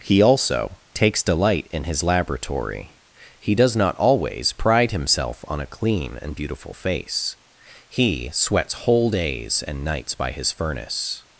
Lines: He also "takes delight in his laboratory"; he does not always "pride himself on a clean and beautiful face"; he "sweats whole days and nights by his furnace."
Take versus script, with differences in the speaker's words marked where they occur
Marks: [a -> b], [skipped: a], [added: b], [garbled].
He also "takes delight in his laboratory"; he does not always "pride himself on a clean and beautiful face"; he "sweats whole days and nights by his furnace."